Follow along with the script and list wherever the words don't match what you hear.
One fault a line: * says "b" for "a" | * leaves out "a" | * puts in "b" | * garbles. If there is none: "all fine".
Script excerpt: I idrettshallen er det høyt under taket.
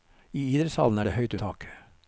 * leaves out "under"